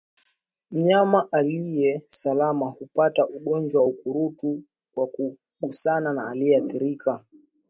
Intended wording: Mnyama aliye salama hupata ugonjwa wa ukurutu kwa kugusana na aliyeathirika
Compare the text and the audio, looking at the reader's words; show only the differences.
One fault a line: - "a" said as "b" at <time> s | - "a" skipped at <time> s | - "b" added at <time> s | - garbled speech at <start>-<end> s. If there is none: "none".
none